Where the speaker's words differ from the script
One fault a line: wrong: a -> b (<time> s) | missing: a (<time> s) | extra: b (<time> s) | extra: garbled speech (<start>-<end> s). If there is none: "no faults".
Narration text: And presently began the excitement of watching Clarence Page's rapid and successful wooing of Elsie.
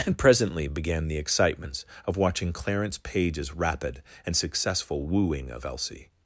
wrong: excitement -> excitements (1.2 s)